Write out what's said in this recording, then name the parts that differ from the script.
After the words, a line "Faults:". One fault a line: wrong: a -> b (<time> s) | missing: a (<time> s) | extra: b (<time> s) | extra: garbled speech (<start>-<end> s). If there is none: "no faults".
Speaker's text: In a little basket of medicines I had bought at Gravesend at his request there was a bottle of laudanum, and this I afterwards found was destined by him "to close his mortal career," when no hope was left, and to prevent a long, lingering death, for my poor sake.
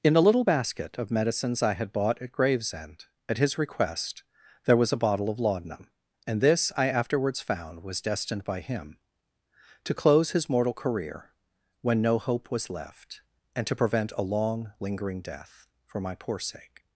In a little basket of medicines I had bought at Gravesend at his request there was a bottle of laudanum, and this I afterwards found was destined by him "to close his mortal career," when no hope was left, and to prevent a long, lingering death, for my poor sake.
Faults:
no faults